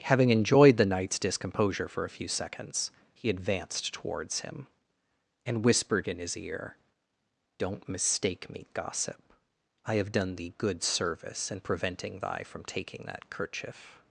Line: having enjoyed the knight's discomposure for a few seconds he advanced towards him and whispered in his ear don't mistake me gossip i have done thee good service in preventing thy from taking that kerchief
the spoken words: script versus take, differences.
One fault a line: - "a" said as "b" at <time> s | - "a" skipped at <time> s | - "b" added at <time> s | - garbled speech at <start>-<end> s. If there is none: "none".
none